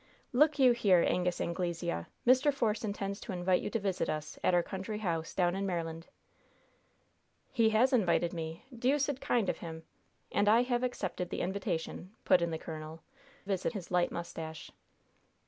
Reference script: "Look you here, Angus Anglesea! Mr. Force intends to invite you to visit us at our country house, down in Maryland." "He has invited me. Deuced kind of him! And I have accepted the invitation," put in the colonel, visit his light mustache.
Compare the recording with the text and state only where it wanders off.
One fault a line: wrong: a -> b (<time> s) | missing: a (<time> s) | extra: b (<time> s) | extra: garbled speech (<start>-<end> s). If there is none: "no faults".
no faults